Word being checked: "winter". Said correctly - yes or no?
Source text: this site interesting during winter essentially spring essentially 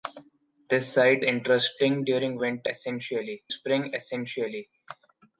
yes